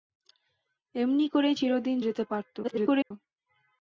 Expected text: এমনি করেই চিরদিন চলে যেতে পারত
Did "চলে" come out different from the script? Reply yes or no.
yes